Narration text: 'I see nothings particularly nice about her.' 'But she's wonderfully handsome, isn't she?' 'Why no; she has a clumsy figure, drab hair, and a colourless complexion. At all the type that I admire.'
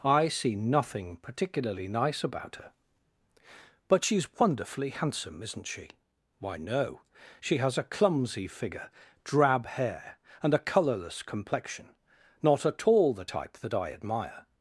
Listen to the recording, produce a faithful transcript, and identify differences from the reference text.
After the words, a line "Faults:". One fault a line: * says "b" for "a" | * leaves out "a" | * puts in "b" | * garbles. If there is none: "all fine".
'I see nothing particularly nice about her.' 'But she's wonderfully handsome, isn't she?' 'Why no; she has a clumsy figure, drab hair, and a colourless complexion. Not at all the type that I admire.'
Faults:
* says "nothing" for "nothings"
* puts in "Not"